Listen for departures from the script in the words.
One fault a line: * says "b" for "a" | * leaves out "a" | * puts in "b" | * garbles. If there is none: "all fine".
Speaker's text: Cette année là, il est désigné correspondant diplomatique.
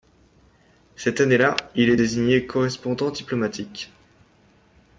all fine